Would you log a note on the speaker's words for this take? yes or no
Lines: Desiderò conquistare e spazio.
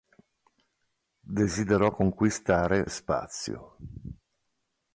no